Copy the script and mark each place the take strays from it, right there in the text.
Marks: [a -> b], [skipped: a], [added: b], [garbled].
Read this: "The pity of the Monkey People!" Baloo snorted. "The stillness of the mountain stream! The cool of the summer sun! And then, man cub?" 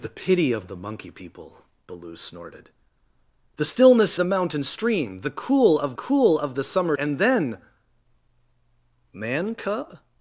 "The pity of the Monkey People!" Baloo snorted. "The stillness [skipped: of] the mountain stream! The cool of [added: cool of] the summer [skipped: sun!] And then, man cub?"